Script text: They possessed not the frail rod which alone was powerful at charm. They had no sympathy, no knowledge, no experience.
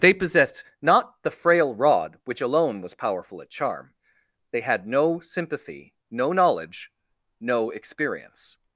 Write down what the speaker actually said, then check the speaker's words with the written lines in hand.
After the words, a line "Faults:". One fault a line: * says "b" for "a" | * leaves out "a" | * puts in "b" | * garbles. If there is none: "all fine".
They possessed not the frail rod which alone was powerful at charm. They had no sympathy, no knowledge, no experience.
Faults:
all fine